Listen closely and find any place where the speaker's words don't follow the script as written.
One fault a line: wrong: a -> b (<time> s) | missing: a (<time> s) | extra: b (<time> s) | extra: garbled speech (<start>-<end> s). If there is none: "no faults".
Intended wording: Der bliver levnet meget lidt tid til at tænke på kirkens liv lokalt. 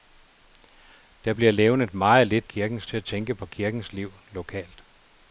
wrong: tid -> kirkens (2.4 s)